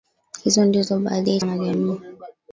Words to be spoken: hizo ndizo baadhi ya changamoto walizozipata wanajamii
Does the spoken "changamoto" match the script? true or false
false